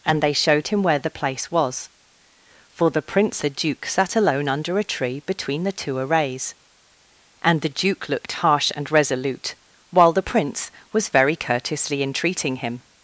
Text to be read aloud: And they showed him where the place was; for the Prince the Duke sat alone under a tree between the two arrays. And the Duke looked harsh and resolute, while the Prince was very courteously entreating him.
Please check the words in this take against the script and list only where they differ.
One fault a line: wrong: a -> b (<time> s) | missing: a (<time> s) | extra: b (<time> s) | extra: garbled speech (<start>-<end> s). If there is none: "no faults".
no faults